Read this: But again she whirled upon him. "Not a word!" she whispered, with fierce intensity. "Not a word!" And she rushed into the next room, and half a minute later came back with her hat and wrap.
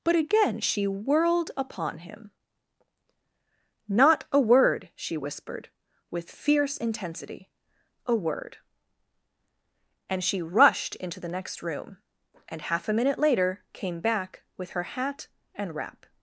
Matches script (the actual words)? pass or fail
fail